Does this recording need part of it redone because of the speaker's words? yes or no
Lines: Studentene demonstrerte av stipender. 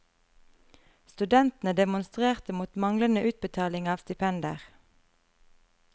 yes